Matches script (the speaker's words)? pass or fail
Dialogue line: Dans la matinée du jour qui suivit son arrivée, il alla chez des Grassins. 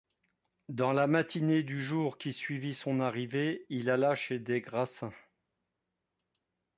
pass